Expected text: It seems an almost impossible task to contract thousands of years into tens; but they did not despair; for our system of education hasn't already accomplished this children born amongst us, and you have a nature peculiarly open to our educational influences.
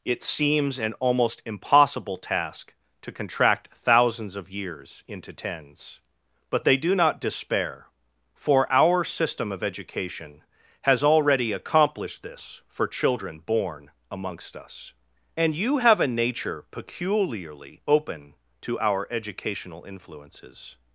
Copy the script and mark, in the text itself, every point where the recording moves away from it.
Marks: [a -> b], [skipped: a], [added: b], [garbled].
It seems an almost impossible task to contract thousands of years into tens; but they [did -> do] not despair; for our system of education [hasn't -> has] already accomplished this [added: for] children born amongst us, and you have a nature peculiarly open to our educational influences.